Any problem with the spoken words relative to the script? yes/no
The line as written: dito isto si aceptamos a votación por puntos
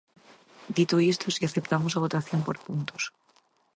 no